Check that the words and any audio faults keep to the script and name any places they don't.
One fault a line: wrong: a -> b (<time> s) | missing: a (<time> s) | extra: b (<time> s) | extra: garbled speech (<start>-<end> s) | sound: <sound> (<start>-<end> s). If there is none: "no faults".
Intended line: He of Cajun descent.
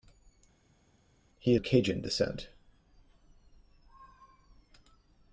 no faults